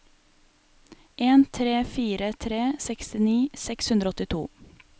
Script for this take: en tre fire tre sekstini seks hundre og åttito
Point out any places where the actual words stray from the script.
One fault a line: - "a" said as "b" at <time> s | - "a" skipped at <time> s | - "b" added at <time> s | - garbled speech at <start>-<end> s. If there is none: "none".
none